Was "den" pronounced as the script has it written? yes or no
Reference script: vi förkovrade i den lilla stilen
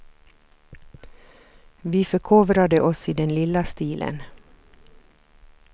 yes